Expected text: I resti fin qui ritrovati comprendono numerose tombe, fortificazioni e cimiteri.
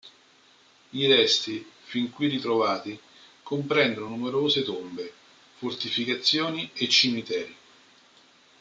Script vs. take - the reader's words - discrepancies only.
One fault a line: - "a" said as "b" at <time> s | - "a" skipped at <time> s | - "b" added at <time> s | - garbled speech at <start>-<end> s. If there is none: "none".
none